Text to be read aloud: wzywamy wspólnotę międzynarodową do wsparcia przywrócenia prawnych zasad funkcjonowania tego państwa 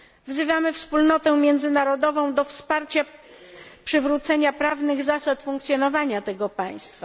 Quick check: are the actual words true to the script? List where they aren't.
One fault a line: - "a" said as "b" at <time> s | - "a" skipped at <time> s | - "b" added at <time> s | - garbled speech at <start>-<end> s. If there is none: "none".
none